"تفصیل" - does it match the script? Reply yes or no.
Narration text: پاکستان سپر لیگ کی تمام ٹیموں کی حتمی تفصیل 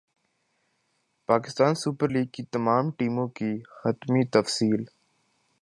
yes